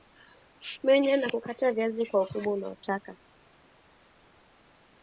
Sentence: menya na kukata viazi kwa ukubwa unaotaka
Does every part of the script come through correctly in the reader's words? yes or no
yes